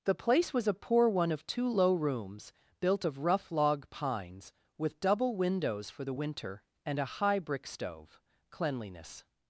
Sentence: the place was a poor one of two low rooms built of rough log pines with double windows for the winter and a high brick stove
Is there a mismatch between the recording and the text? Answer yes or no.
yes